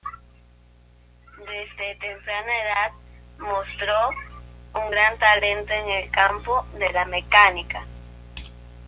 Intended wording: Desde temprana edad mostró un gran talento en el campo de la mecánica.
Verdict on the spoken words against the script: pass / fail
pass